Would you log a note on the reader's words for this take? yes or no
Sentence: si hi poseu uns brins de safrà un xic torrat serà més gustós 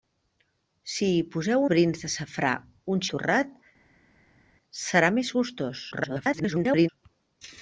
yes